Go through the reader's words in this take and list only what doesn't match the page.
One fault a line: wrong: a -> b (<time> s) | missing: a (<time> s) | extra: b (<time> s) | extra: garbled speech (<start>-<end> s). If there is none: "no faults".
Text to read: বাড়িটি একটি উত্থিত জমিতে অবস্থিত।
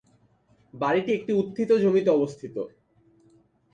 no faults